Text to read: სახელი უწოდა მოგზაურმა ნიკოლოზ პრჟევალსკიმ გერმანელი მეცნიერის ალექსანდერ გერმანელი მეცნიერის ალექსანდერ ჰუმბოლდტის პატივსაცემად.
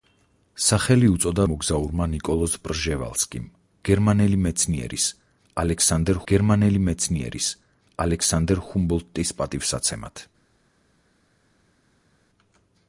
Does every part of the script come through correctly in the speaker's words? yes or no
yes